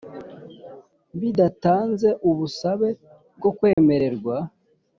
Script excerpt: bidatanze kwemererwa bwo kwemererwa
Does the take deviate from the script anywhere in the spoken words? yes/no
yes